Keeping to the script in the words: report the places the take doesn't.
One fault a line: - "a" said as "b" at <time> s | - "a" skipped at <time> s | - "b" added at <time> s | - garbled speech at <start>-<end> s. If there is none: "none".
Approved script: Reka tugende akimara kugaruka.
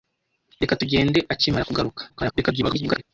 - garbled speech at 2.1-3.0 s